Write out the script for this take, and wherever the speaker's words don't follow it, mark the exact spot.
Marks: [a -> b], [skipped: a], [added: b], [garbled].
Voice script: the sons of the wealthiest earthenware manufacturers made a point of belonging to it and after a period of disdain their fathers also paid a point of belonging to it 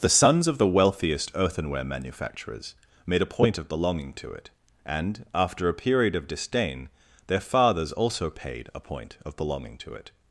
the sons of the wealthiest earthenware manufacturers made a point of belonging to it and after a period of disdain their fathers also paid a point of belonging to it